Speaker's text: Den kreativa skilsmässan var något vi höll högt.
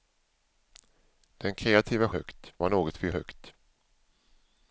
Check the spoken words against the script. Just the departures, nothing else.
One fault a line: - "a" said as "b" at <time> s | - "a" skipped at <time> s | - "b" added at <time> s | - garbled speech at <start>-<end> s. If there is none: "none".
- "skilsmässan" said as "högt" at 2.1 s
- "höll" skipped at 3.1 s